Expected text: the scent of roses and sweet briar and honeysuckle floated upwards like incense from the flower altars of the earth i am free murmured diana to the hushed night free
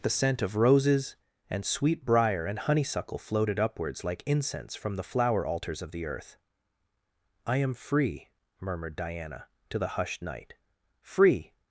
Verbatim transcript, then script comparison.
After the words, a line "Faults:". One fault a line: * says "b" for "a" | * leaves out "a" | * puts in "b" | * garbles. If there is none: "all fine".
the scent of roses and sweet briar and honeysuckle floated upwards like incense from the flower altars of the earth i am free murmured diana to the hushed night free
Faults:
all fine